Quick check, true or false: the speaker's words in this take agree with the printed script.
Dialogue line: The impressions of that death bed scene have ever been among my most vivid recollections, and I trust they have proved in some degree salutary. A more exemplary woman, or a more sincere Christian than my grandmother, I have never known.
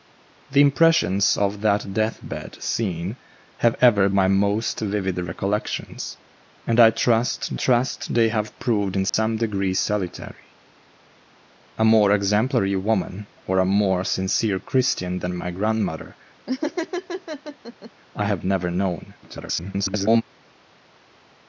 false